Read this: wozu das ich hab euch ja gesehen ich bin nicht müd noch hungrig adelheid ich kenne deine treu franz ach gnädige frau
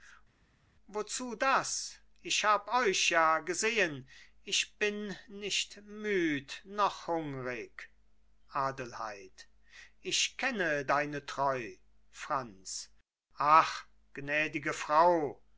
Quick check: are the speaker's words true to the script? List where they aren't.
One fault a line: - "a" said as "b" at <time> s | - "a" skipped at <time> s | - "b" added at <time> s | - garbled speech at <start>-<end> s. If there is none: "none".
none